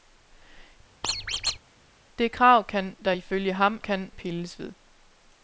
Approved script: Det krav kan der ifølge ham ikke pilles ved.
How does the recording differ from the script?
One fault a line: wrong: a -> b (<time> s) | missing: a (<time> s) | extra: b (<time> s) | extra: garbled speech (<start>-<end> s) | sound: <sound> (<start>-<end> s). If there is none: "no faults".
sound: squeak (1.0-1.6 s)
wrong: ikke -> kan (3.8 s)